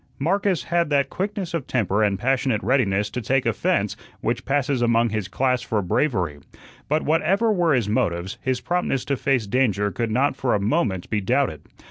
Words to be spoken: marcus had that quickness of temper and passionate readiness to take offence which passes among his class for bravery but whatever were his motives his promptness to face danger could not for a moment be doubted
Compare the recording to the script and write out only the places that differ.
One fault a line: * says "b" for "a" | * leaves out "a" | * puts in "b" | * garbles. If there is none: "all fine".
all fine